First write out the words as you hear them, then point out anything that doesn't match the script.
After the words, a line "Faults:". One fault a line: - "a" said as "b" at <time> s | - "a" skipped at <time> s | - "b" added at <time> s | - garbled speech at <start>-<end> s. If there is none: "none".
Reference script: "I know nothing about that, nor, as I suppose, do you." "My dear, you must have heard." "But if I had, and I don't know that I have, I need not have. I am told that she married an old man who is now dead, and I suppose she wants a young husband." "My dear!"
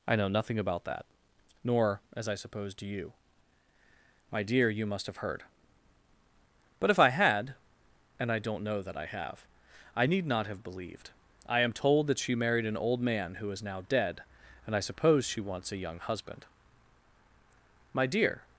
"I know nothing about that, nor, as I suppose, do you." "My dear, you must have heard." "But if I had, and I don't know that I have, I need not have believed. I am told that she married an old man who is now dead, and I suppose she wants a young husband." "My dear!"
Faults:
- "believed" added at 10.6 s